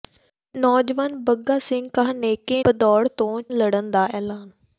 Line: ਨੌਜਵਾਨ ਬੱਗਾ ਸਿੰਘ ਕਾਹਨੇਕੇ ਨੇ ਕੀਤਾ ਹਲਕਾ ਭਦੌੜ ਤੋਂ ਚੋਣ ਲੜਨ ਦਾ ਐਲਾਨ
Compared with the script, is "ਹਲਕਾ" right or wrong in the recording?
wrong